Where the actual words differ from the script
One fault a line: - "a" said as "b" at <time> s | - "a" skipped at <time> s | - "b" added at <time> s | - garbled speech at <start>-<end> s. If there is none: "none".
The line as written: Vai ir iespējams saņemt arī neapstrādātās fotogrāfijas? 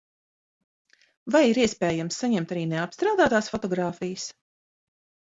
none